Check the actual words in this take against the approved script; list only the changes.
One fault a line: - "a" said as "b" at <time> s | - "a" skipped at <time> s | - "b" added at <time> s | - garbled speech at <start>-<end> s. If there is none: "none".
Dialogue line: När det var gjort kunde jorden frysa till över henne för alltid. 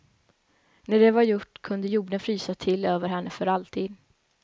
none